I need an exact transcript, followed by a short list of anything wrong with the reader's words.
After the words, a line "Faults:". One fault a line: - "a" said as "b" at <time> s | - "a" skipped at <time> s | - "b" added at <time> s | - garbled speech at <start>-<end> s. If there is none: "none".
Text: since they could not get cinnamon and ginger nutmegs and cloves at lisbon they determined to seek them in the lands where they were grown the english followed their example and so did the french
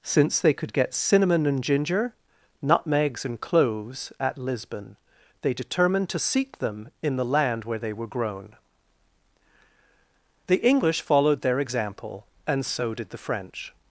since they could get cinnamon and ginger nutmegs and cloves at lisbon they determined to seek them in the land where they were grown the english followed their example and so did the french
Faults:
- "not" skipped at 0.7 s
- "lands" said as "land" at 7.2 s